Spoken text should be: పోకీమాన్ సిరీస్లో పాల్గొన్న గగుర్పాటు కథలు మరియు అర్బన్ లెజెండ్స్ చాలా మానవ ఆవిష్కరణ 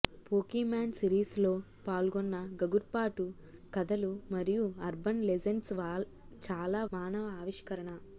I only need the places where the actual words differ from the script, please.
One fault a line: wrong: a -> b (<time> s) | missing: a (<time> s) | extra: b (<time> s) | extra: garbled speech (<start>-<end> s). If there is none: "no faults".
no faults